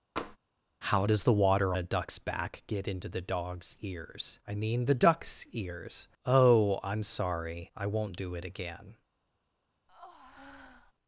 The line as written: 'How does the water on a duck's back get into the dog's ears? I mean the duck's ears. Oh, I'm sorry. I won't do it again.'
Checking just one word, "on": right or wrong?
wrong